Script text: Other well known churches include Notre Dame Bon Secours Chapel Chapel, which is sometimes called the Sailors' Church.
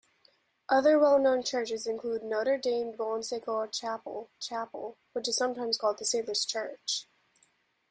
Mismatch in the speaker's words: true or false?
false